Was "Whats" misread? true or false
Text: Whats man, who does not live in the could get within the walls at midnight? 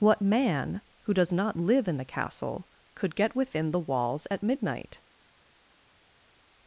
true